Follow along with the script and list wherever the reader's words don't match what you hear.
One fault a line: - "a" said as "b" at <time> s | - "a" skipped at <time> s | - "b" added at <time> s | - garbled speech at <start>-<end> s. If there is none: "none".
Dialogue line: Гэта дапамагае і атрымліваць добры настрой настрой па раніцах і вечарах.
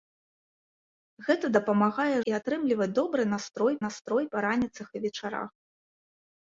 none